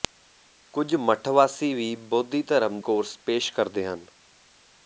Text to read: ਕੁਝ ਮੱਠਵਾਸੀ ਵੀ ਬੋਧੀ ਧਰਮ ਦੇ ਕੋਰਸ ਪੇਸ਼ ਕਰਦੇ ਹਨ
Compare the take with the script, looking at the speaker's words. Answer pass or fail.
fail